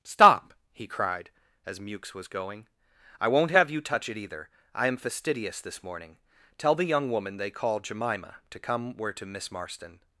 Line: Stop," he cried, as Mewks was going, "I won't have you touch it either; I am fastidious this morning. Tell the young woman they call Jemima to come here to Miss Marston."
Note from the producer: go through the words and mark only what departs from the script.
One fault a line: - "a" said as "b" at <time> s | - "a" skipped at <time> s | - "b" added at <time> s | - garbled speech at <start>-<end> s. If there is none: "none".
- "here" said as "where" at 9.0 s